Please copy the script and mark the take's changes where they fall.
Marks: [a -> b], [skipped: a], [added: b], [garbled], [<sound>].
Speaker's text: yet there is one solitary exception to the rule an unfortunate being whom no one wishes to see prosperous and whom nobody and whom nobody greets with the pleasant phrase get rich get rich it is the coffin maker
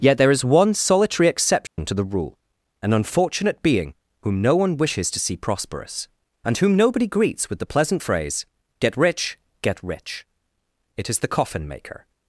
yet there is one solitary exception [dropout] to the rule an unfortunate being whom no one wishes to see prosperous and whom nobody [skipped: and whom nobody] greets with the pleasant phrase get rich get rich it is the coffin maker